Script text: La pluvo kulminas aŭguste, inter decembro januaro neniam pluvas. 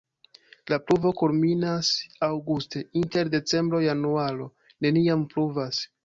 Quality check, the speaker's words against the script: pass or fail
pass